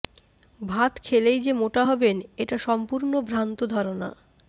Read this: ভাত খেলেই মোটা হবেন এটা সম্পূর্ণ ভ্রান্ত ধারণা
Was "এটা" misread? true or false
false